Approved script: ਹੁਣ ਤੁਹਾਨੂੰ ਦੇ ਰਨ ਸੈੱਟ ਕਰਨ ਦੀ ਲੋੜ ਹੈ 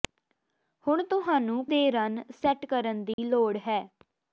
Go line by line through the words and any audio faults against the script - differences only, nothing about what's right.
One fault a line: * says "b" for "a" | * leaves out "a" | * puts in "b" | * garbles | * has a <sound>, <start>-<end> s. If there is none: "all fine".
* has a dropout, 3.1-3.2 s